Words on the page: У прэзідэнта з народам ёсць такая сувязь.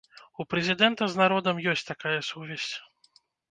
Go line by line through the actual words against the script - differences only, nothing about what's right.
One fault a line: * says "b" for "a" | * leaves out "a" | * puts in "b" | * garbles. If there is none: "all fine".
all fine